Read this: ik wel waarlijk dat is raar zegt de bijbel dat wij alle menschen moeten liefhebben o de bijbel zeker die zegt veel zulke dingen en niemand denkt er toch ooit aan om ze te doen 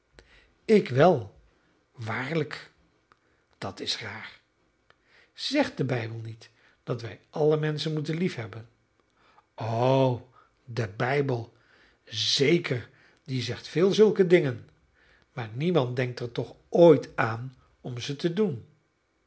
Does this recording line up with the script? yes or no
no